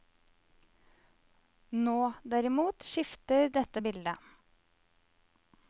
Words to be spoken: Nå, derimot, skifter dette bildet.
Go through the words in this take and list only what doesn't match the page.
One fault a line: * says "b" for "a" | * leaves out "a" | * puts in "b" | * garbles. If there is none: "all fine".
all fine